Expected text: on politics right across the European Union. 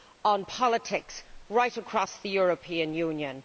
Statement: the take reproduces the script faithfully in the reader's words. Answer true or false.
true